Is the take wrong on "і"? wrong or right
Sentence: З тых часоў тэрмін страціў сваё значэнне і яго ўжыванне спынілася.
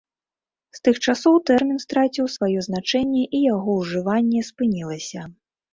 right